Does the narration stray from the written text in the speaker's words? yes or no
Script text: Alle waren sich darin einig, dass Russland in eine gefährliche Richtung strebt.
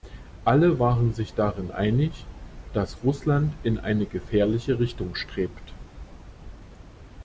no